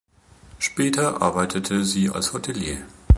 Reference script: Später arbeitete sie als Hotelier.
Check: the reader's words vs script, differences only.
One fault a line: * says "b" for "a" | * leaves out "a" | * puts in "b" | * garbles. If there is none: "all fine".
all fine